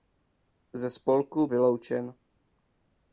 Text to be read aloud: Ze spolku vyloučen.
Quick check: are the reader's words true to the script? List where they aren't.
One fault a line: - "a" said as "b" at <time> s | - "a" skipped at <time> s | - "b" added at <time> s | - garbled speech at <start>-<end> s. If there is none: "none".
none